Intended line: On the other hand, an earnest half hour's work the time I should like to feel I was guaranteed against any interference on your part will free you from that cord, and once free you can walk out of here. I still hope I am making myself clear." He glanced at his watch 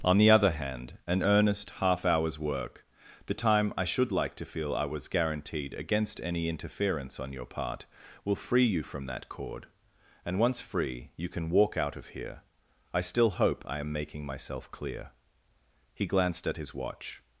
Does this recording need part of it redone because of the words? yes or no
no